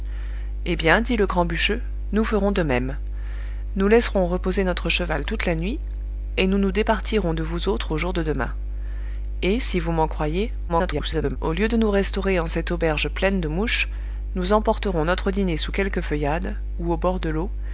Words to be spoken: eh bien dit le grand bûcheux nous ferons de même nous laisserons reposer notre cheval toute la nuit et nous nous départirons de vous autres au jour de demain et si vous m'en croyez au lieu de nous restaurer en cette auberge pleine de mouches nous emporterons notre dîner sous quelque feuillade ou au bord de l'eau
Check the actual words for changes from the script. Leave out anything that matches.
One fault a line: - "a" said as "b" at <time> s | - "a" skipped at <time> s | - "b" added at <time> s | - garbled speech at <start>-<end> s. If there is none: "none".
- garbled speech at 10.7-11.4 s